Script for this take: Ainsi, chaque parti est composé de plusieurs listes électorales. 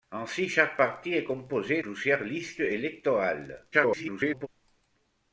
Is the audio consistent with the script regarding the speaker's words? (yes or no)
no